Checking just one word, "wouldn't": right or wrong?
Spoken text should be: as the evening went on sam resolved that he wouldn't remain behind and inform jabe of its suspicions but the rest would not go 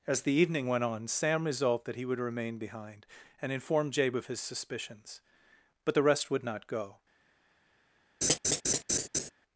wrong